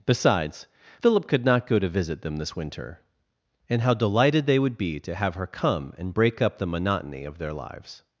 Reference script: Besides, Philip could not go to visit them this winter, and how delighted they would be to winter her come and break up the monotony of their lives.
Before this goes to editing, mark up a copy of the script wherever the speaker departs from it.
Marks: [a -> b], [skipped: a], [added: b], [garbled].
Besides, Philip could not go to visit them this winter, and how delighted they would be to [winter -> have] her come and break up the monotony of their lives.